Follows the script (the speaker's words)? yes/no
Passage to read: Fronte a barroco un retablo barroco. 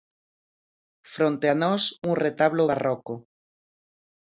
no